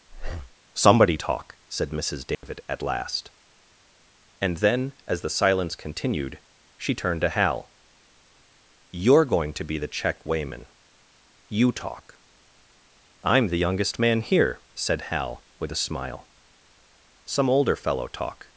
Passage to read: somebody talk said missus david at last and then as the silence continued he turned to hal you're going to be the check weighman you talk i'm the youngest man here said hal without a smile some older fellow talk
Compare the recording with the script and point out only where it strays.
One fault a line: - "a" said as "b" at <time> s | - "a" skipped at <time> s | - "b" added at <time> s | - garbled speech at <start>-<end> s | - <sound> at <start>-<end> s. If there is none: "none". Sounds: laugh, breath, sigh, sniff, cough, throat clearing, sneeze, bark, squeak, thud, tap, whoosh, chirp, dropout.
- breath at 0.1-0.6 s
- dropout at 2.3-2.4 s
- "he" said as "she" at 6.8 s
- "without" said as "with" at 15.6 s